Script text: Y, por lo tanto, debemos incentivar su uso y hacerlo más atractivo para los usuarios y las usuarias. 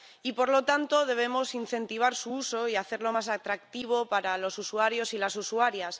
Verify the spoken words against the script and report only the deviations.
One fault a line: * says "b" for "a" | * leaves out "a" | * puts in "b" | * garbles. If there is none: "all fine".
all fine